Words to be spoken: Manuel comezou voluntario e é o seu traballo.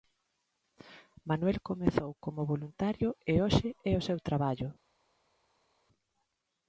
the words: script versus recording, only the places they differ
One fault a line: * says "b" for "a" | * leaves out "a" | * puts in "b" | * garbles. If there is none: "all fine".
* puts in "como"
* puts in "hoxe"